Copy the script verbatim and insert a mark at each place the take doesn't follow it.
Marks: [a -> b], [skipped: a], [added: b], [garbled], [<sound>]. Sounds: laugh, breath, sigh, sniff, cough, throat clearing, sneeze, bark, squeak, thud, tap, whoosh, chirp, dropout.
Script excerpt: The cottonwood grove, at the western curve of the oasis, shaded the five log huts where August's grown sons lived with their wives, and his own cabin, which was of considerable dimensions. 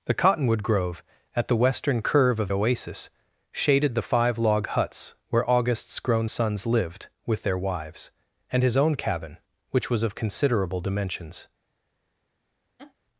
The cottonwood grove, at the western curve of [skipped: the] oasis, shaded the five log huts where August's grown sons lived with their wives, and his own cabin, which was of considerable dimensions. [laugh]